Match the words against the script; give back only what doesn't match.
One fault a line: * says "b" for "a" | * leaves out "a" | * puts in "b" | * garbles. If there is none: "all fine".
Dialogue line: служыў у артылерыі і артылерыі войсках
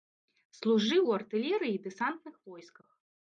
* says "дэсантных" for "артылерыі"